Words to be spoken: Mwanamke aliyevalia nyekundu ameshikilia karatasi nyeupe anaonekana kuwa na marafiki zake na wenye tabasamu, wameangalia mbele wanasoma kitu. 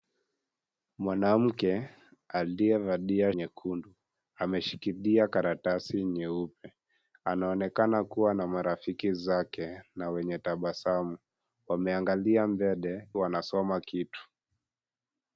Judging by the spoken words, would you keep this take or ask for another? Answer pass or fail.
pass